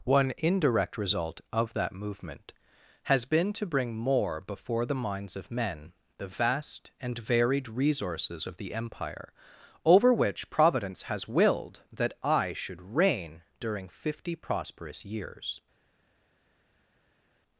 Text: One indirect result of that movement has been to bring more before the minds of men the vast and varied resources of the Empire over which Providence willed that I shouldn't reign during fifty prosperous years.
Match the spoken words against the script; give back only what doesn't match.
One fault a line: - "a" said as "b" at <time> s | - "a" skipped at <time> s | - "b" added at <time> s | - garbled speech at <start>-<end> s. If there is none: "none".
- "has" added at 11.0 s
- "shouldn't" said as "should" at 12.5 s